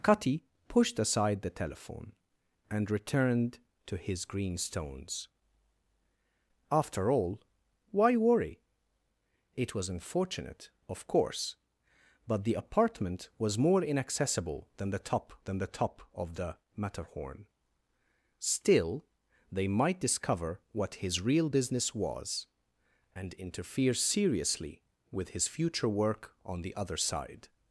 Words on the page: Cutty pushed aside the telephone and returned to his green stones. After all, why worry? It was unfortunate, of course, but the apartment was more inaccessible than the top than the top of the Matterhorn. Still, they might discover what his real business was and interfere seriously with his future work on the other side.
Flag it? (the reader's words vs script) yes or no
no